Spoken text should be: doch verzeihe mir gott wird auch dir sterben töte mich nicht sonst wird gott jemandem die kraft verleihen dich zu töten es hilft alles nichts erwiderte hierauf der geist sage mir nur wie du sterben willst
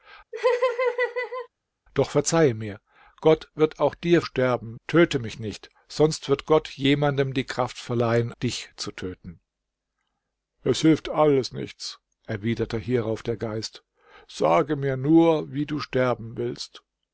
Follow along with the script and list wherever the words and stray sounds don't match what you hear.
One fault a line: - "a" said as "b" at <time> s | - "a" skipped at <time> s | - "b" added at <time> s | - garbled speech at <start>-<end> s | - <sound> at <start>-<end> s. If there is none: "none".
- laugh at 0.3-1.5 s